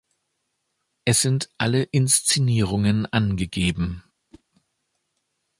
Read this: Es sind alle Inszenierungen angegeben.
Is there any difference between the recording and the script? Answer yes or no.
no